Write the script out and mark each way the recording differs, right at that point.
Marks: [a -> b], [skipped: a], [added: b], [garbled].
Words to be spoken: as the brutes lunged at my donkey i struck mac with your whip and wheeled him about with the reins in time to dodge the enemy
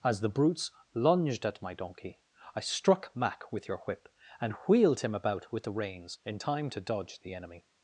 as the brutes lunged at my donkey i struck mac with your whip and wheeled him about with the reins in time to dodge the enemy